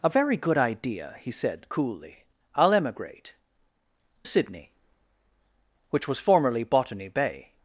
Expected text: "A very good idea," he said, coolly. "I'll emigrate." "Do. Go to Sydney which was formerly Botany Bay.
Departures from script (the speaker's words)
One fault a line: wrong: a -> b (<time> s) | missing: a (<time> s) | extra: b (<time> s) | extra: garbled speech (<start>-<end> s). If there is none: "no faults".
missing: Do Go to (3.4 s)